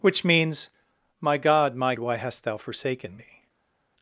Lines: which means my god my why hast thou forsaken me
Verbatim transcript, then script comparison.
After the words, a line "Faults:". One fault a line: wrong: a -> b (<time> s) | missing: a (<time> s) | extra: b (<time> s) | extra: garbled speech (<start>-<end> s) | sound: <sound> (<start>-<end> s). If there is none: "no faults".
which means my god my why hast thou forsaken me
Faults:
no faults